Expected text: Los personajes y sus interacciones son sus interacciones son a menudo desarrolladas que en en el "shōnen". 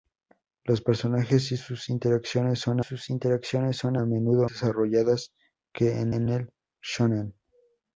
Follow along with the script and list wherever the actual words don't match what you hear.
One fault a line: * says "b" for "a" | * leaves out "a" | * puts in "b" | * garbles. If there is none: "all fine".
all fine